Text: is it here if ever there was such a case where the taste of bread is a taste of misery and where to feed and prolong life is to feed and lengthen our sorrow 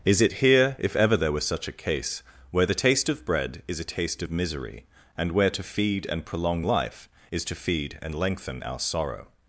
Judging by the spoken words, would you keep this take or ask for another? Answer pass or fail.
pass